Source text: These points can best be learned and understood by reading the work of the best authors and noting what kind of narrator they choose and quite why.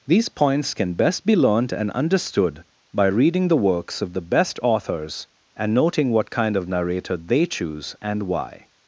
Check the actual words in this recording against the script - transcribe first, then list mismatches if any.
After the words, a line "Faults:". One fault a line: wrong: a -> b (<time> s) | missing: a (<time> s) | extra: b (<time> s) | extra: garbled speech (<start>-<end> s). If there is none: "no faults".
These points can best be learned and understood by reading the works of the best authors and noting what kind of narrator they choose and why.
Faults:
wrong: work -> works (3.6 s)
missing: quite (8.2 s)